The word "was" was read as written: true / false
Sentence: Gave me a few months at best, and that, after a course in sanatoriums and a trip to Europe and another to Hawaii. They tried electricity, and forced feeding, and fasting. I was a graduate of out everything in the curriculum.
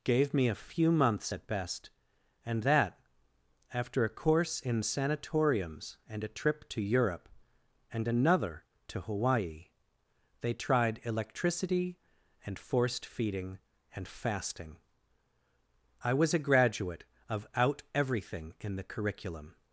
true